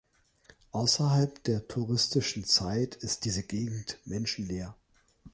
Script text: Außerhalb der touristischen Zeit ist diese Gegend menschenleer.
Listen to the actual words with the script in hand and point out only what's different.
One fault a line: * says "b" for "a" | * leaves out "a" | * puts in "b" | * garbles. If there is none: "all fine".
all fine